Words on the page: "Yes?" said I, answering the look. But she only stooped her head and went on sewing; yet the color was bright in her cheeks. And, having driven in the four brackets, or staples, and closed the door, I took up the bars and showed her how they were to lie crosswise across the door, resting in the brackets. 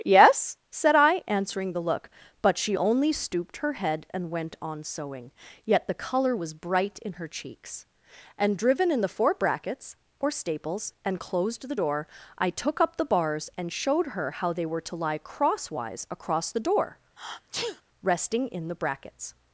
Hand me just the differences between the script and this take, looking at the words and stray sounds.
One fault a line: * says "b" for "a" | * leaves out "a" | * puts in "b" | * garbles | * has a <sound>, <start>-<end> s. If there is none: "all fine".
* leaves out "having"
* has a sneeze, 17.2-17.8 s